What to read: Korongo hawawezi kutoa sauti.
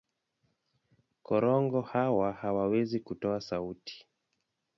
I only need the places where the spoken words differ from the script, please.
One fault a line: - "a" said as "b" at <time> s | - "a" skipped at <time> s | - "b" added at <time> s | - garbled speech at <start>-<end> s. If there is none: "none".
- "hawa" added at 1.8 s